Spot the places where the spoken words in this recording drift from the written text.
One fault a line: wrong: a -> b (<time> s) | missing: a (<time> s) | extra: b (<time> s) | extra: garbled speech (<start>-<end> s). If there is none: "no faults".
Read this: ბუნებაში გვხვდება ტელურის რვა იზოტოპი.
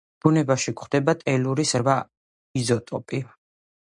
no faults